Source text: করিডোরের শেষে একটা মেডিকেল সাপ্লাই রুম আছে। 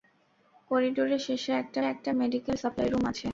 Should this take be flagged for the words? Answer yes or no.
yes